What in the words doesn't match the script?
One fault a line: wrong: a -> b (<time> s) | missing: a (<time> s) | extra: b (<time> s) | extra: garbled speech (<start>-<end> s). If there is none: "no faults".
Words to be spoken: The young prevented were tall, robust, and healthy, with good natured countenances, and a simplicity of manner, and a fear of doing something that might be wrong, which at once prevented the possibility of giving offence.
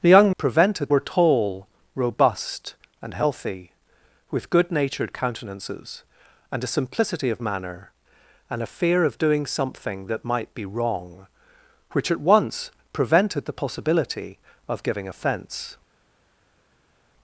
no faults